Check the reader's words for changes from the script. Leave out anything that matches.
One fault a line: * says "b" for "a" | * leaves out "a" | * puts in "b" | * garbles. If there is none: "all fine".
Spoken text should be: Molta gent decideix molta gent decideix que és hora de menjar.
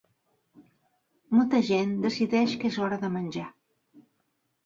* leaves out "molta gent decideix"